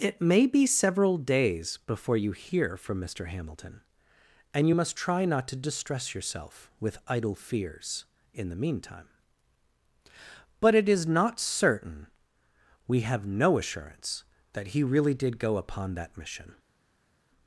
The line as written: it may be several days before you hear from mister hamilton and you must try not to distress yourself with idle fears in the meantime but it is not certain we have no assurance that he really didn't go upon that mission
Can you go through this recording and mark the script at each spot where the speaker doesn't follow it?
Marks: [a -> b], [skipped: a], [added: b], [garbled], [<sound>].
it may be several days before you hear from mister hamilton and you must try not to distress yourself with idle fears in the meantime but it is not certain we have no assurance that he really [didn't -> did] go upon that mission